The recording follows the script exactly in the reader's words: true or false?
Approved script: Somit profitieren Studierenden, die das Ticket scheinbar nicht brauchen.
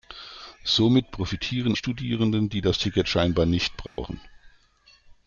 true